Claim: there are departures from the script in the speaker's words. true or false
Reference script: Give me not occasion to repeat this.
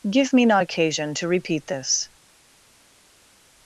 false